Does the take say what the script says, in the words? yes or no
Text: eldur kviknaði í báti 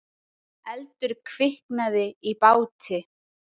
yes